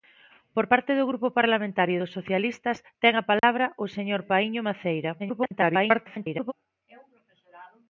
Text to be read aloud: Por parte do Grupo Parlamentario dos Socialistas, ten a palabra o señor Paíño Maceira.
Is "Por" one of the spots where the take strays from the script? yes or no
no